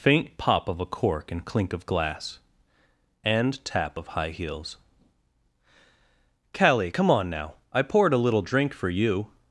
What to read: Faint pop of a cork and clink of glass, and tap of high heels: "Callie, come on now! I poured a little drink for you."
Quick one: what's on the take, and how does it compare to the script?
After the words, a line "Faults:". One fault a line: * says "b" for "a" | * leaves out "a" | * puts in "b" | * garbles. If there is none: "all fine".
Faint pop of a cork and clink of glass, and tap of high heels: "Callie, come on now! I poured a little drink for you."
Faults:
all fine